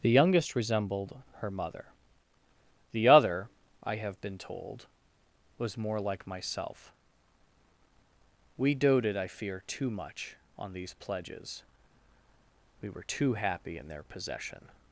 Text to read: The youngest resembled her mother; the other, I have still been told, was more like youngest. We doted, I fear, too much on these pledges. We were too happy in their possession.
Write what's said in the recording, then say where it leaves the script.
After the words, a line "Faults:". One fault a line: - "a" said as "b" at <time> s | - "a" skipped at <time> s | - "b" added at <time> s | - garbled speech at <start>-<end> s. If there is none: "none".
The youngest resembled her mother; the other, I have been told, was more like myself. We doted, I fear, too much on these pledges. We were too happy in their possession.
Faults:
- "still" skipped at 4.2 s
- "youngest" said as "myself" at 6.3 s